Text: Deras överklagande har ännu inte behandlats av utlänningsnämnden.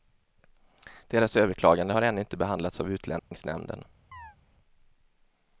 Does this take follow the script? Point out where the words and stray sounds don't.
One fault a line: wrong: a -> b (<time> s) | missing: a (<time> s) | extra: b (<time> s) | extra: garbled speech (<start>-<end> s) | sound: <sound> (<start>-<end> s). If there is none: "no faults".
sound: dropout (3.2-3.3 s)
sound: chirp (4.1-4.4 s)